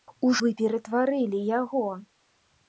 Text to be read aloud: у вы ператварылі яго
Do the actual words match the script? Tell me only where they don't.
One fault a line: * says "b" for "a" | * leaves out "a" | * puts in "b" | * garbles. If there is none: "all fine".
all fine